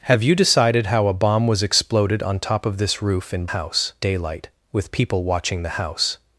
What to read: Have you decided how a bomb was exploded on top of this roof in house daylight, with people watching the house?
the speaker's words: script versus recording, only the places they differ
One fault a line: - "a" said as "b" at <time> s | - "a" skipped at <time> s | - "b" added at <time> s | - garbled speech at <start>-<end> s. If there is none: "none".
none